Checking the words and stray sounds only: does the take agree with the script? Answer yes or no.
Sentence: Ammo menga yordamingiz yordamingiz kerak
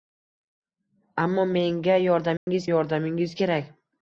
no